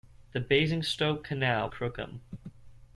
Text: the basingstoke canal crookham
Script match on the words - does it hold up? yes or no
yes